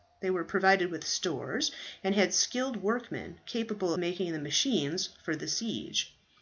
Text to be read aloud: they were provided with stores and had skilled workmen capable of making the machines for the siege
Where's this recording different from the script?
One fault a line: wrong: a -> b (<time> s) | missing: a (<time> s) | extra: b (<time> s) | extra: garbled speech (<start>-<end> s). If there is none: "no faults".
missing: of (3.9 s)